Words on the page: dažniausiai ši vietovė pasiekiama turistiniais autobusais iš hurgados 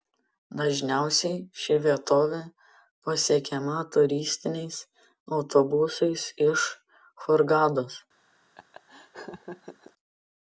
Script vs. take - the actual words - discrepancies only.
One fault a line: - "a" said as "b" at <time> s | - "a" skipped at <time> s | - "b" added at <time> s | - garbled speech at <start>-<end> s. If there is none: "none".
none